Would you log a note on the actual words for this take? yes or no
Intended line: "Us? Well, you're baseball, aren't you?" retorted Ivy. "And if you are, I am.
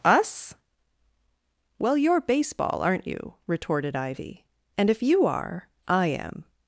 no